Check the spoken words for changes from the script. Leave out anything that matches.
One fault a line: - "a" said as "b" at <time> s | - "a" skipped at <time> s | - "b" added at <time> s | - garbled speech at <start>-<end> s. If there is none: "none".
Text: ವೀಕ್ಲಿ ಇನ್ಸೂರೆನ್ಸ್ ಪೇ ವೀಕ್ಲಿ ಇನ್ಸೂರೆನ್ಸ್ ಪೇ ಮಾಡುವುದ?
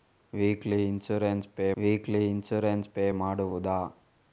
none